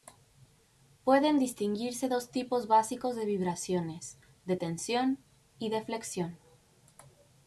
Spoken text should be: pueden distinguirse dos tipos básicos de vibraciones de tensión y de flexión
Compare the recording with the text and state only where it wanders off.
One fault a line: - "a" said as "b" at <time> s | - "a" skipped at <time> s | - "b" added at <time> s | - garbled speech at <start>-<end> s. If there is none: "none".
none